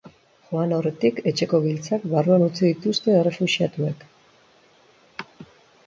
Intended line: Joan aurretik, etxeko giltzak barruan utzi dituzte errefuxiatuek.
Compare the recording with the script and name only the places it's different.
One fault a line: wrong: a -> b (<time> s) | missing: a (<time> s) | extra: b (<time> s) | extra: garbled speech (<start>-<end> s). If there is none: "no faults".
no faults